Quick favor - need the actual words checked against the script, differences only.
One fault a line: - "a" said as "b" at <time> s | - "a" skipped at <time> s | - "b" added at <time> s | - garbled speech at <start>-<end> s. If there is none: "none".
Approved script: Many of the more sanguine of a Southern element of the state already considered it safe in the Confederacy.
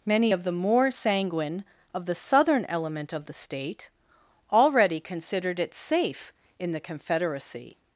- "a" said as "the" at 2.0 s